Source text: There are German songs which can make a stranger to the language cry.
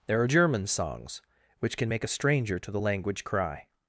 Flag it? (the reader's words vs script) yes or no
no